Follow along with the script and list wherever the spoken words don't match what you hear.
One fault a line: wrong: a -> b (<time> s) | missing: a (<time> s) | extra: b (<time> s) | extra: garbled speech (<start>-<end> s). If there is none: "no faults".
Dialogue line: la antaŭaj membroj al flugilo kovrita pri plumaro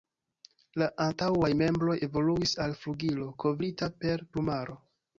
extra: evoluis (2.1 s)
wrong: pri -> per (4.0 s)